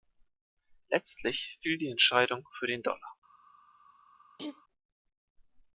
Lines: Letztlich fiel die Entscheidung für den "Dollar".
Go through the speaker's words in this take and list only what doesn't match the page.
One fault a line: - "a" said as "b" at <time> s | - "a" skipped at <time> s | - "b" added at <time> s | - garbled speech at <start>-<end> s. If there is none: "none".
none